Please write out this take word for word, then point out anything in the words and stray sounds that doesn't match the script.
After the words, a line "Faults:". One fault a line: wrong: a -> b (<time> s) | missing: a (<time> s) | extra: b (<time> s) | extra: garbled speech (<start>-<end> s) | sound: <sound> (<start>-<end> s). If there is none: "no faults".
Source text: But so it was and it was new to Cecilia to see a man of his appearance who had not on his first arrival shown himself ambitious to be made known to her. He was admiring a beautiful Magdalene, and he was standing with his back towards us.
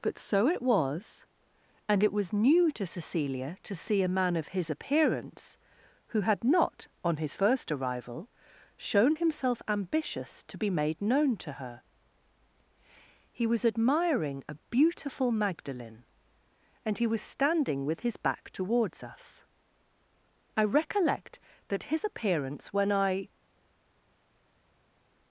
But so it was and it was new to Cecilia to see a man of his appearance who had not on his first arrival shown himself ambitious to be made known to her. He was admiring a beautiful Magdalene, and he was standing with his back towards us. I recollect that his appearance when I
Faults:
extra: I recollect that his appearance when I (20.6 s)